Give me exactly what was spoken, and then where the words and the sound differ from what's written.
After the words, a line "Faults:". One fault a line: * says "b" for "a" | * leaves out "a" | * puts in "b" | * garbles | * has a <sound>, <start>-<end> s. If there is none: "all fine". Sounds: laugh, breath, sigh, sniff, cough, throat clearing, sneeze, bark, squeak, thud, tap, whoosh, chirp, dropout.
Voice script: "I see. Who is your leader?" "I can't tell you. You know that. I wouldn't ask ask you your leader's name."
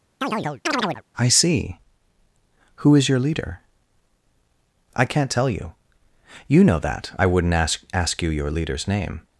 "I see. Who is your leader?" "I can't tell you. You know that. I wouldn't ask ask you your leader's name."
Faults:
* has a chirp, 0.2-1.0 s